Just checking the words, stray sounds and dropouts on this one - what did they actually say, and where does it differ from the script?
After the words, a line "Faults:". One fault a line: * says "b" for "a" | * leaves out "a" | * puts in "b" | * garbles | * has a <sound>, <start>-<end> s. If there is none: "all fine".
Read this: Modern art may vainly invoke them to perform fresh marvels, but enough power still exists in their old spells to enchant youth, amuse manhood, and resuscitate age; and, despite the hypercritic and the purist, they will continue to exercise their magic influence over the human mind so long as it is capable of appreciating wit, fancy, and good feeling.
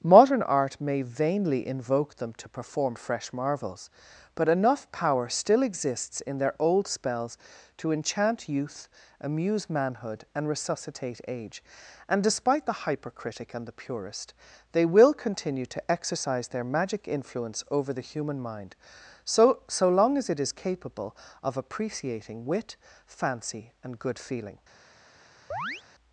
Modern art may vainly invoke them to perform fresh marvels, but enough power still exists in their old spells to enchant youth, amuse manhood, and resuscitate age; and, despite the hypercritic and the purist, they will continue to exercise their magic influence over the human mind so so long as it is capable of appreciating wit, fancy, and good feeling.
Faults:
* puts in "so"
* has a chirp, 25.5-25.8 s